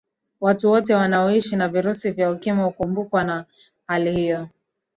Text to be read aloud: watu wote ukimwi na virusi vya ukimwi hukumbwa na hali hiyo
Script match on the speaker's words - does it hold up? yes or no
no